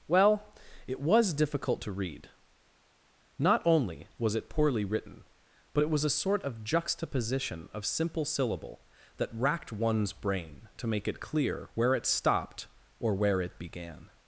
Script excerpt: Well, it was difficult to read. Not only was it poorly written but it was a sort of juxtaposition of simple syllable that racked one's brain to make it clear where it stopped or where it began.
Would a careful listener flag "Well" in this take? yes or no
no